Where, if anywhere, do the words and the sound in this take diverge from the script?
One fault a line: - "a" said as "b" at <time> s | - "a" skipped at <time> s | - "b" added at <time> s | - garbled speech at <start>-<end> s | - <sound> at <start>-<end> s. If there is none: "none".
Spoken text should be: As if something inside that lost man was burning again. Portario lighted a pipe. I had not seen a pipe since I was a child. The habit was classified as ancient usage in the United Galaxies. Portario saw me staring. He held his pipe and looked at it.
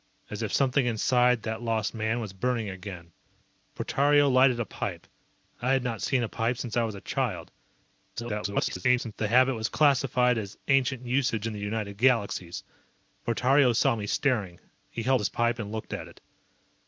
- garbled speech at 8.2-9.1 s